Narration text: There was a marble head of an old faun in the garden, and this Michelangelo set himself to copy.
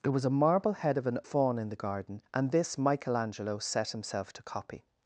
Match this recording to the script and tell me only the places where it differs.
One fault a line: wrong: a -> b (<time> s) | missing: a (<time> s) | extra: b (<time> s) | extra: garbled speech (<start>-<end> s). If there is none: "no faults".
missing: old (1.2 s)